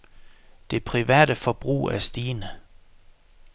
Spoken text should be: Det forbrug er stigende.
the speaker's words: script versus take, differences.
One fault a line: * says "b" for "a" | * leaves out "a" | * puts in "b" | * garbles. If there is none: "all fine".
* puts in "private"